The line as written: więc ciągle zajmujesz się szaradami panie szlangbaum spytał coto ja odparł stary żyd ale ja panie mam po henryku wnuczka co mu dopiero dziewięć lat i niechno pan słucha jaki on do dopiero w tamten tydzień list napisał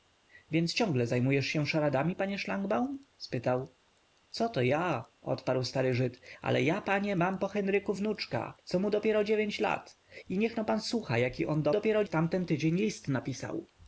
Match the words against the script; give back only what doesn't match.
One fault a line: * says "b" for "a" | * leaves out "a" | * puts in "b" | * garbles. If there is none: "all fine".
all fine